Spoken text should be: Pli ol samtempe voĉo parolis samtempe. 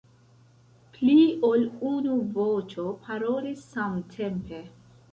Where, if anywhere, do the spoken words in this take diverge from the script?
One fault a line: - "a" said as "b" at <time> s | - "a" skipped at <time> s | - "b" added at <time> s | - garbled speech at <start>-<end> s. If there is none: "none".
- "samtempe" said as "unu" at 1.9 s